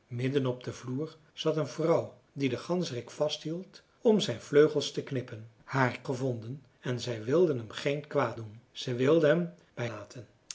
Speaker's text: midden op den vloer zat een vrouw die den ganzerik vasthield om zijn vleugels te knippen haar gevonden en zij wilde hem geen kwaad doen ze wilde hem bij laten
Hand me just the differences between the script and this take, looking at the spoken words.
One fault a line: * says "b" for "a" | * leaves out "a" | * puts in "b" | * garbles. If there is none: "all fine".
all fine